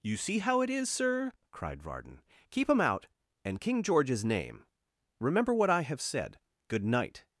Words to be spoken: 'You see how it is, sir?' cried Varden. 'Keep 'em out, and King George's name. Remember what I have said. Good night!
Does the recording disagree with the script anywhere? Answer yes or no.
no